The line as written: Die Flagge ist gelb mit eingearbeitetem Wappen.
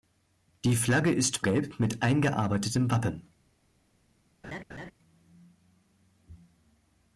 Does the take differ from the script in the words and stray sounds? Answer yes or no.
yes